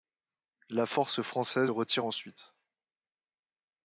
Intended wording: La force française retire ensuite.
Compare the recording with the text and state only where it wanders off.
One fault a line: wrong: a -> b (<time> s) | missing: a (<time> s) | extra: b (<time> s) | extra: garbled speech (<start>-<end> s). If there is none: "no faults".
no faults